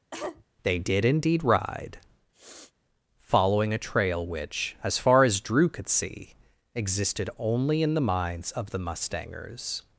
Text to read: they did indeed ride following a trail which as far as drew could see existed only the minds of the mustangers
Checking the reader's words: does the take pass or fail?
fail